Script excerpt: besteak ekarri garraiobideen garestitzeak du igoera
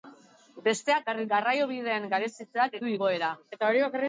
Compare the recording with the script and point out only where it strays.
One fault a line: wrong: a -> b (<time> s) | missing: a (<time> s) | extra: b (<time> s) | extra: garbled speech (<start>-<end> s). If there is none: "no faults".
no faults